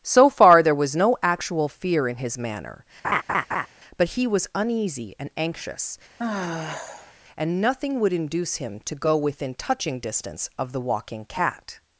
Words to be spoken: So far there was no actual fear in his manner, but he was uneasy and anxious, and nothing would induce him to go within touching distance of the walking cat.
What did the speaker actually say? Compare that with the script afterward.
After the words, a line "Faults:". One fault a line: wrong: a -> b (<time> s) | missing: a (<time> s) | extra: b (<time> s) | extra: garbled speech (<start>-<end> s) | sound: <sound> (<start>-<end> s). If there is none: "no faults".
So far there was no actual fear in his manner, but he was uneasy and anxious, and nothing would induce him to go within touching distance of the walking cat.
Faults:
sound: laugh (3.0-3.7 s)
sound: sigh (6.2-7.1 s)